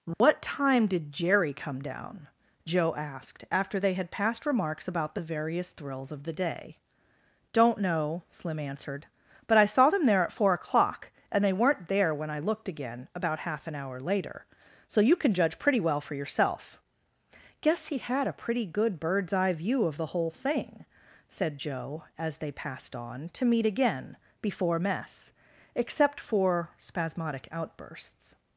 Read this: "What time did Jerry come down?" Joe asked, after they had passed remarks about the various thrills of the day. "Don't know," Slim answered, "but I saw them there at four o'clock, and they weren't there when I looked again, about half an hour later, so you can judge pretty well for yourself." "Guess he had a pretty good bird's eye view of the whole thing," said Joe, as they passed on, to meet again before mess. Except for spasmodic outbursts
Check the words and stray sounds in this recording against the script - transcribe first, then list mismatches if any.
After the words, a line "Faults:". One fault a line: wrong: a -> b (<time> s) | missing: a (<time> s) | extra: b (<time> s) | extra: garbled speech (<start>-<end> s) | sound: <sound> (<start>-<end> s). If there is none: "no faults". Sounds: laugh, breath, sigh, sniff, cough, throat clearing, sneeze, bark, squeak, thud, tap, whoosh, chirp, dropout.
"What time did Jerry come down?" Joe asked, after they had passed remarks about the various thrills of the day. "Don't know," Slim answered, "but I saw them there at four o'clock, and they weren't there when I looked again, about half an hour later, so you can judge pretty well for yourself." "Guess he had a pretty good bird's eye view of the whole thing," said Joe, as they passed on, to meet again before mess. Except for spasmodic outbursts
Faults:
sound: dropout (0.1-0.2 s)